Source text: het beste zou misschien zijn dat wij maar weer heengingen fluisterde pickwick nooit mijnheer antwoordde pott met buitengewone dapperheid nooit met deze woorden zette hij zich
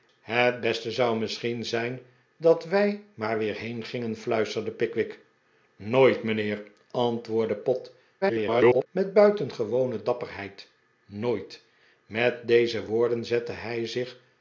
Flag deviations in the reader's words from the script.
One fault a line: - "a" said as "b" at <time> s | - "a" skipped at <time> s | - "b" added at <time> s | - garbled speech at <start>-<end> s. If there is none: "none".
- garbled speech at 8.2-8.9 s